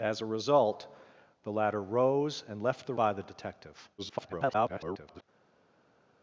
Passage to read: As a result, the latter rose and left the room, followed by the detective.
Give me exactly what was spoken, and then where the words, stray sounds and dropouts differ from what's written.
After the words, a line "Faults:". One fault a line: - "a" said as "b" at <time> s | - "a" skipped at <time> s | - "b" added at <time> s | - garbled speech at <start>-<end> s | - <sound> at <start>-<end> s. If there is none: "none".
As a result, the latter rose and left the by the detective. [garbled]
Faults:
- "room followed" skipped at 3.0 s
- garbled speech at 4.0-5.2 s